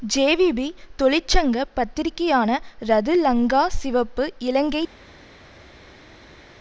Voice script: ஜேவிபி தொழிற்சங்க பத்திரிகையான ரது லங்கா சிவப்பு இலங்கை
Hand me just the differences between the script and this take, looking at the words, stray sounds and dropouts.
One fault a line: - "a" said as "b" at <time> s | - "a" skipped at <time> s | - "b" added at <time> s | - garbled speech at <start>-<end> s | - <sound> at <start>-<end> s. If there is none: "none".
none